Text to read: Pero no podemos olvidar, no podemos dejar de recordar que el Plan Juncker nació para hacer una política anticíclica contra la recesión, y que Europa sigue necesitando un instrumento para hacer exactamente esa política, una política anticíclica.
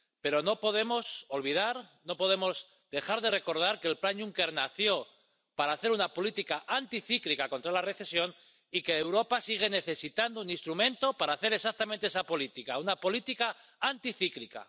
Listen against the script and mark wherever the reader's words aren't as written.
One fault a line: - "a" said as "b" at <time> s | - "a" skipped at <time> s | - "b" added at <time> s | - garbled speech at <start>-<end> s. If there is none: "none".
none